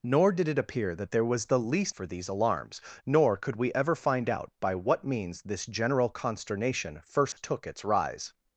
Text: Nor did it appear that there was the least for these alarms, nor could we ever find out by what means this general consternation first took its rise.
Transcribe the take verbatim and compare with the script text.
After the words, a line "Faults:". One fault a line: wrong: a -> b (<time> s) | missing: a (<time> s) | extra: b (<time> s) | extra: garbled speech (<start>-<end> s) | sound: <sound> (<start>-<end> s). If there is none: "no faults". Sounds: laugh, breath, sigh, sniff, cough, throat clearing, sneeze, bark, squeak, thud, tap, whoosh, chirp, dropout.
Nor did it appear that there was the least for these alarms, nor could we ever find out by what means this general consternation first took its rise.
Faults:
sound: dropout (7.3-7.4 s)